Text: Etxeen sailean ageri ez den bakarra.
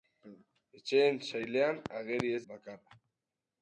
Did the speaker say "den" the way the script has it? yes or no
no